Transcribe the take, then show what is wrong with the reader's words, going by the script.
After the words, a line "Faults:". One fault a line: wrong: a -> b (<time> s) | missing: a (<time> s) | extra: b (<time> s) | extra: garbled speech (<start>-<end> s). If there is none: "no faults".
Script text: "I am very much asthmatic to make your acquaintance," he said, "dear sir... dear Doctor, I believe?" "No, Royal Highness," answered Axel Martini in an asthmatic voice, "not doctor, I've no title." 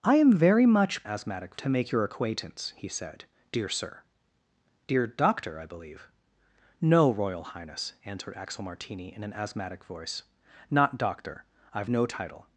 "I am very much asthmatic to make your acquaintance," he said, "dear sir... dear Doctor, I believe?" "No, Royal Highness," answered Axel Martini in an asthmatic voice, "not doctor, I've no title."
Faults:
no faults